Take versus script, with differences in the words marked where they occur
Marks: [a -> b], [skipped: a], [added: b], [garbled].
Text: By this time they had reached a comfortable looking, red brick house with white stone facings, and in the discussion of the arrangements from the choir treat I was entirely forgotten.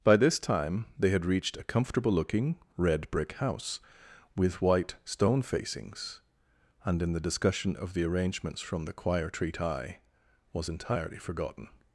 By this time they had reached a comfortable looking, red brick house with white stone facings, and in the discussion of the arrangements from the choir treat I was entirely forgotten.